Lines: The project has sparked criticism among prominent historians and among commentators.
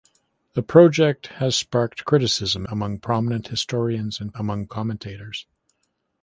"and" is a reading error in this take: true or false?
false